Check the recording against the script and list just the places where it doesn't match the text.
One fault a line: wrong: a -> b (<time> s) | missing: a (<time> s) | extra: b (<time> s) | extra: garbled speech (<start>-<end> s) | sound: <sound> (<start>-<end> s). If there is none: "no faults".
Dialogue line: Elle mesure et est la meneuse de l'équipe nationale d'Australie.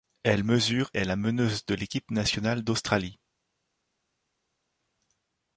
missing: et (0.9 s)